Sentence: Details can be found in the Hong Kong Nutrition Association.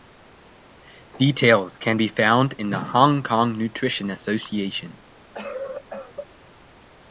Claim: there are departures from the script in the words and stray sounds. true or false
true